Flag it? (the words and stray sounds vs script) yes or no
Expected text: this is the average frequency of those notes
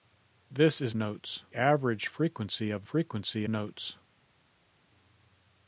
yes